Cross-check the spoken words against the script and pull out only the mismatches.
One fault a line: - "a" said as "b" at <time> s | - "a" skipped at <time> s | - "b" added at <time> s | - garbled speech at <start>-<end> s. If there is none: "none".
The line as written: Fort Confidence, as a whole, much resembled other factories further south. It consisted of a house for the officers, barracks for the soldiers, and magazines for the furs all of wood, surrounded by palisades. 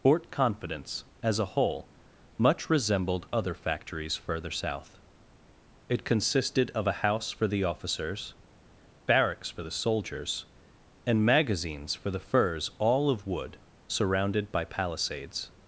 none